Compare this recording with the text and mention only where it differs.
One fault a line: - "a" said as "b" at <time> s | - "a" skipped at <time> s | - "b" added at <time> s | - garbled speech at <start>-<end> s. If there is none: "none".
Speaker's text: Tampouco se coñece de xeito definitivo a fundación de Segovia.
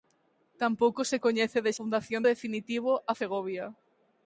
- "xeito" said as "fundación" at 1.8 s
- "fundación de" skipped at 3.1 s